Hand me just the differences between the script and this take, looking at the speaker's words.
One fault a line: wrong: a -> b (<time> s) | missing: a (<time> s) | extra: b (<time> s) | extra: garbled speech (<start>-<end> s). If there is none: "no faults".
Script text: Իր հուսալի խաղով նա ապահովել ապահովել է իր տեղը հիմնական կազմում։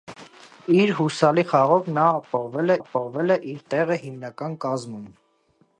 no faults